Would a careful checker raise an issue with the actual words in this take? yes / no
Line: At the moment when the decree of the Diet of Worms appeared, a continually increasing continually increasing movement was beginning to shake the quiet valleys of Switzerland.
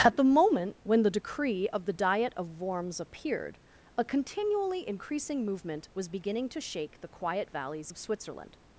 yes